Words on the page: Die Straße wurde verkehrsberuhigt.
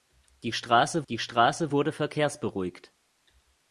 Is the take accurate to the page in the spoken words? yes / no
no